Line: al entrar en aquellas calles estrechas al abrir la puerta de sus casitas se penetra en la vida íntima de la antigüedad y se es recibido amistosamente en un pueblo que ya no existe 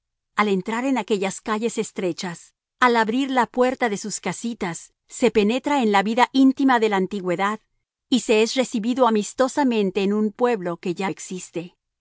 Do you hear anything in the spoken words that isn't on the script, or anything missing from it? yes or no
yes